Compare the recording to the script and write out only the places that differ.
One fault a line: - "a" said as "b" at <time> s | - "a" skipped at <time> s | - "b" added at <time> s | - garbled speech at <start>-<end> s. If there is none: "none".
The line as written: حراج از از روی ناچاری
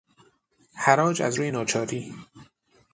- "از" skipped at 1.4 s